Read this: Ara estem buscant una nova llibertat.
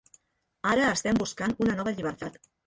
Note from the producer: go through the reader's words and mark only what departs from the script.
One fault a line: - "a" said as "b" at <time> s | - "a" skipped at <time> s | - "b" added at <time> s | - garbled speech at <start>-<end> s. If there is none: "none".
none